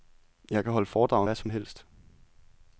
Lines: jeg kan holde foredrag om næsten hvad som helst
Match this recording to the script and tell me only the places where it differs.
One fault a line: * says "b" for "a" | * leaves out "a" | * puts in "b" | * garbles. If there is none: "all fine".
* leaves out "næsten"